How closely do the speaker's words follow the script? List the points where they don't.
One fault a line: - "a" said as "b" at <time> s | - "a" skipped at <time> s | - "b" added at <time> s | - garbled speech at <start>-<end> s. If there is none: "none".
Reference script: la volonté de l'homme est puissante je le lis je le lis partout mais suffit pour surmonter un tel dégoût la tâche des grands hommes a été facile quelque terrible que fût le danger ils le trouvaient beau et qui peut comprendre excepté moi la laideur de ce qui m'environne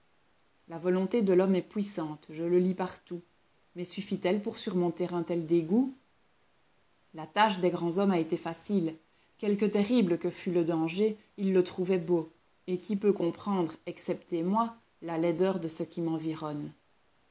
- "je le lis" skipped at 2.7 s
- "elle" added at 4.2 s